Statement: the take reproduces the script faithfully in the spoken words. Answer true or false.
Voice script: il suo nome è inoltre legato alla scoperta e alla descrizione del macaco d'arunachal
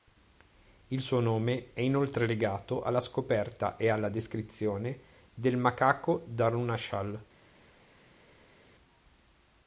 true